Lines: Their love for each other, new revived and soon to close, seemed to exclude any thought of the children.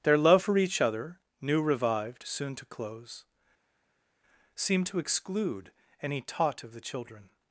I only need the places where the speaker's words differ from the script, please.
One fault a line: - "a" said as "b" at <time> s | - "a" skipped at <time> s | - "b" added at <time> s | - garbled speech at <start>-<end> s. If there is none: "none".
- "and" skipped at 2.2 s
- "thought" said as "taught" at 6.2 s